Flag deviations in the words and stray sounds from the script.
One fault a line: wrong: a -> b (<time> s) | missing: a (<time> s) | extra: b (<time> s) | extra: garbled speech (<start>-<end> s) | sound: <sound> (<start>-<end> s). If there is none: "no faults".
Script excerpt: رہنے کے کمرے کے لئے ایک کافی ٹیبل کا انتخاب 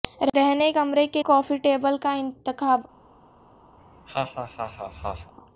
missing: کے (0.7 s)
missing: لئے ایک (1.2 s)
sound: laugh (3.8-5.3 s)